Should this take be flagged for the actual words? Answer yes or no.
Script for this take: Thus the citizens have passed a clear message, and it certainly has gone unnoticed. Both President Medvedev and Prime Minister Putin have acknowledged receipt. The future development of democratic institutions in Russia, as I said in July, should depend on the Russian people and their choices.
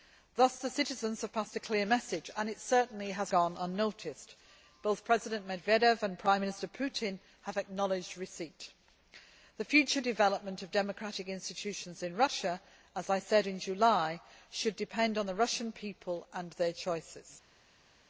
no